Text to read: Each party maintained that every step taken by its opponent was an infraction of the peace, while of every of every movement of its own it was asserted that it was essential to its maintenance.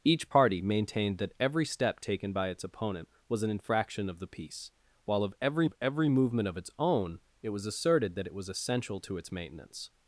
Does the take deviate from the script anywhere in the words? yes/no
no